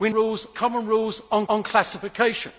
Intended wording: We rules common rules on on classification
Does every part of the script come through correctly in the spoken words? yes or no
yes